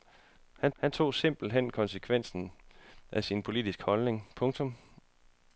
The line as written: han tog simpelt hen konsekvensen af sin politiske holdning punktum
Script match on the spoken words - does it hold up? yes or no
no